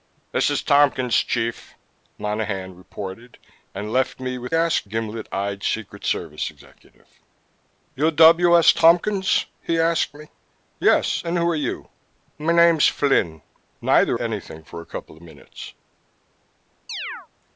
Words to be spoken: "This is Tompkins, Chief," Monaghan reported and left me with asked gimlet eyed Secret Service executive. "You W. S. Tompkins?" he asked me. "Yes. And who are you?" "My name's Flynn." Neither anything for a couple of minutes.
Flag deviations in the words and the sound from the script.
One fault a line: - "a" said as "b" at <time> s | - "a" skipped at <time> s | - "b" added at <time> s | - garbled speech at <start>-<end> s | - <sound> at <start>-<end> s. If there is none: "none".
- chirp at 16.9-17.3 s